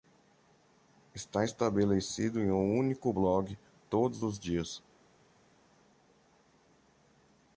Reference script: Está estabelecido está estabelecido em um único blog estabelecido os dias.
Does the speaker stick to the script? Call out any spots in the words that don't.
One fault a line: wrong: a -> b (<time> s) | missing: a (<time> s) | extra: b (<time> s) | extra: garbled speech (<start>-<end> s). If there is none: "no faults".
missing: está estabelecido (2.4 s)
wrong: estabelecido -> todos (3.9 s)